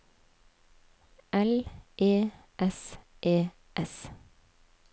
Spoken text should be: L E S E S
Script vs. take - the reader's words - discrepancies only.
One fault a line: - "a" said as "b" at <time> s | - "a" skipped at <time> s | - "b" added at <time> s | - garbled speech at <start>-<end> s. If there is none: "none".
none